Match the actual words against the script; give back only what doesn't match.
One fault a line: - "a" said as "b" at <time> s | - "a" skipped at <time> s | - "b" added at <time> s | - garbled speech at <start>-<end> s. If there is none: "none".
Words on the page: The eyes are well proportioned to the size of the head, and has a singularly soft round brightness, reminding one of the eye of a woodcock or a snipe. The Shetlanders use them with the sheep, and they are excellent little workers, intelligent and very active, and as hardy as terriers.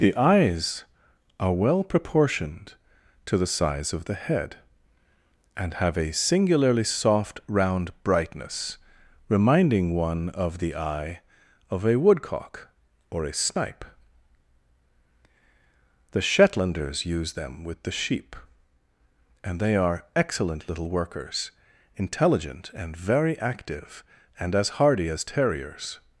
- "has" said as "have" at 5.8 s